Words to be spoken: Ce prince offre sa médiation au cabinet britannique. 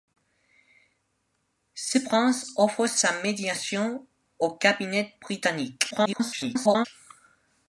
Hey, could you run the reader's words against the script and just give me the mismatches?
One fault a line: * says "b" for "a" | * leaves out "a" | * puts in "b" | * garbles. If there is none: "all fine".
* garbles